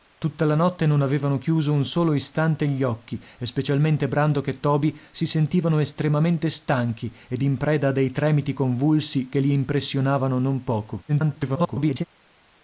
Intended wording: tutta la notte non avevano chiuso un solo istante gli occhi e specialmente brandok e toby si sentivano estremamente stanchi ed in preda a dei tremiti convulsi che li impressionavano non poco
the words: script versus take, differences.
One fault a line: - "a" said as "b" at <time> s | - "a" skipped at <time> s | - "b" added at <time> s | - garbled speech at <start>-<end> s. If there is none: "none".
- garbled speech at 11.1-12.0 s